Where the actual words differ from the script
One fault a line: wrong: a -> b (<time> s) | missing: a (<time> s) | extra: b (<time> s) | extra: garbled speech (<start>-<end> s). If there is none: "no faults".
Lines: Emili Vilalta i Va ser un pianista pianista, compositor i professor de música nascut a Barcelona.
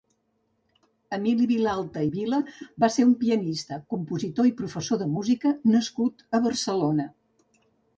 extra: Vila (2.1 s)
missing: pianista (3.8 s)